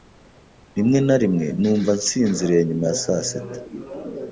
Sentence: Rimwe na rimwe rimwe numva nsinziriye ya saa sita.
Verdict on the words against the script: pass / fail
fail